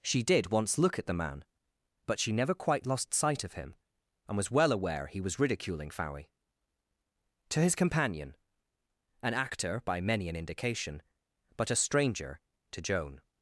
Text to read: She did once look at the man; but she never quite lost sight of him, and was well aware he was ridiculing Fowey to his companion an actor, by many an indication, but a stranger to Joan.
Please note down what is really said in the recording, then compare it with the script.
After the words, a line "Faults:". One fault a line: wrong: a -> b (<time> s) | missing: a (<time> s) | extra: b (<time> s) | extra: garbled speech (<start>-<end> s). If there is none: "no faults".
She did once look at the man; but she never quite lost sight of him, and was well aware he was ridiculing Fowey to his companion an actor, by many an indication, but a stranger to Joan.
Faults:
no faults